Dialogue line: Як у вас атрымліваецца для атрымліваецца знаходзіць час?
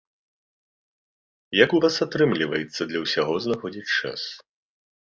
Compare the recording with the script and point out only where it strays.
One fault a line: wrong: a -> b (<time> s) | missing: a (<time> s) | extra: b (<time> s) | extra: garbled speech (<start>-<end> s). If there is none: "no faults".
wrong: атрымліваецца -> ўсяго (3.1 s)